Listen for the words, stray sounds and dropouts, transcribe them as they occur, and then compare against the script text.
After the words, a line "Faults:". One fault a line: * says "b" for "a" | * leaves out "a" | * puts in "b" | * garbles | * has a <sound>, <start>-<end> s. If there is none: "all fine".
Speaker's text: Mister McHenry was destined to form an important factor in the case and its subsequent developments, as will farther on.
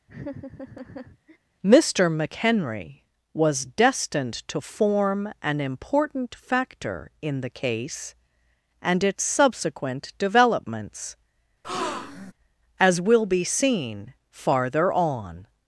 Mister McHenry was destined to form an important factor in the case and its subsequent developments, as will be seen farther on.
Faults:
* has a laugh, 0.1-1.4 s
* has a breath, 11.6-12.3 s
* puts in "be seen"